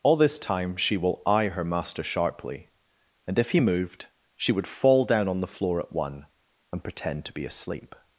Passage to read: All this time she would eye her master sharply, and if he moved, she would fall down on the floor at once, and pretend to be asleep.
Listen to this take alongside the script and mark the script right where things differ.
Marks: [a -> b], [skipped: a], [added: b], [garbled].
All this time she [would -> will] eye her master sharply, and if he moved, she would fall down on the floor at [once, -> one] and pretend to be asleep.